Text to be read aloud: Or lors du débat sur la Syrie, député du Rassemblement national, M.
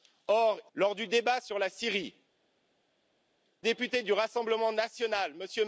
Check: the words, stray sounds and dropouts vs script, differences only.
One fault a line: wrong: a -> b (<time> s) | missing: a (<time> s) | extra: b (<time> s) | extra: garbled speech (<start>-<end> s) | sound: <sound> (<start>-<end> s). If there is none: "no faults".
no faults